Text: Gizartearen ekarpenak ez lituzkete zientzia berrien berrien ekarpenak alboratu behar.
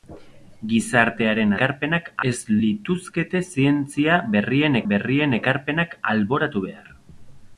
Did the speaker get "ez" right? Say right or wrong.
right